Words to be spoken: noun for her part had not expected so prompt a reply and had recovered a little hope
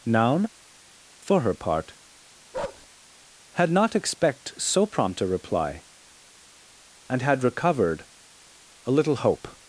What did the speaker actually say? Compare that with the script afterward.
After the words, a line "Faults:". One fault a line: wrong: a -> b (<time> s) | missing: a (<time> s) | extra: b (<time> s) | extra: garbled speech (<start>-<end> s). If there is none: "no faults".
noun for her part had not expect so prompt a reply and had recovered a little hope
Faults:
wrong: expected -> expect (3.9 s)